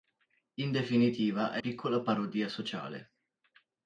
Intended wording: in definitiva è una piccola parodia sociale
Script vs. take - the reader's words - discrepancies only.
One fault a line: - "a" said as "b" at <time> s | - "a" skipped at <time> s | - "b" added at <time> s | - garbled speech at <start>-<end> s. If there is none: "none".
- "una" skipped at 1.6 s